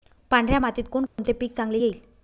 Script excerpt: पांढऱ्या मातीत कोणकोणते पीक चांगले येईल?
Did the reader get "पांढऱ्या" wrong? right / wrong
right